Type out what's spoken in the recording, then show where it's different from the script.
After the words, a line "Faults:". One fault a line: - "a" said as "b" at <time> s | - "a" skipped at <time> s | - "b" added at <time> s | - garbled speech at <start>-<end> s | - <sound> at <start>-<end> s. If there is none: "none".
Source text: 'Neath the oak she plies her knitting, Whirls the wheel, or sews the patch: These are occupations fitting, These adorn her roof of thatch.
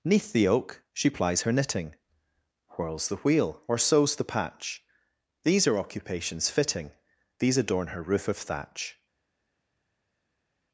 'Neath the oak she plies her knitting, Whirls the wheel, or sews the patch: These are occupations fitting, These adorn her roof of thatch.
Faults:
none